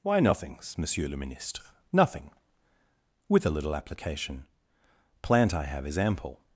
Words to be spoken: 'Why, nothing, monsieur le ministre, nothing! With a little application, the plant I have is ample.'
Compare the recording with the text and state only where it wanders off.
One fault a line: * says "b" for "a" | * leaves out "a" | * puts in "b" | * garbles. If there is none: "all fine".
* says "nothings" for "nothing"
* leaves out "the"